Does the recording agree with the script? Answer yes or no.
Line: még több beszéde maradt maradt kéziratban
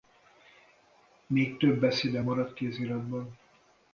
no